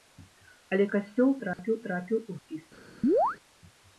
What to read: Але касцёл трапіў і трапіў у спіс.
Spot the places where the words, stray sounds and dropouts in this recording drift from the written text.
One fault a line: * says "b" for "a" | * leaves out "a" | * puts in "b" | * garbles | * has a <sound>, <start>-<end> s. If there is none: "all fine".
* has a dropout, 1.5-1.6 s
* has a chirp, 3.0-3.4 s